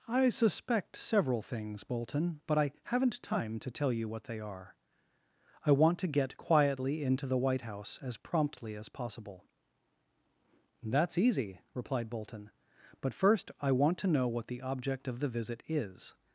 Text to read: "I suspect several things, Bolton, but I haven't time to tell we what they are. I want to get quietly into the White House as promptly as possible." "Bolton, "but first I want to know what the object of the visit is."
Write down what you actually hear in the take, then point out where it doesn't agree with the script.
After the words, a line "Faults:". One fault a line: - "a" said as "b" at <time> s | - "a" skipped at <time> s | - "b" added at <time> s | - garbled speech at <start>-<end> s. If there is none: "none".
"I suspect several things, Bolton, but I haven't time to tell you what they are. I want to get quietly into the White House as promptly as possible." "That's easy," replied Bolton, "but first I want to know what the object of the visit is."
Faults:
- "we" said as "you" at 3.9 s
- "That's easy replied" added at 10.8 s